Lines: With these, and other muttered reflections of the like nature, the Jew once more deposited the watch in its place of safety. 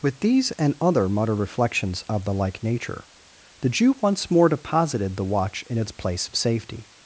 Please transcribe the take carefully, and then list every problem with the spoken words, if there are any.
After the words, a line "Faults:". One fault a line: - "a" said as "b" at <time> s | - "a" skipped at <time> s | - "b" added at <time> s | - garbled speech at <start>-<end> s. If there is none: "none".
With these, and other mutter reflections of the like nature, the Jew once more deposited the watch in its place of safety.
Faults:
- "muttered" said as "mutter" at 1.1 s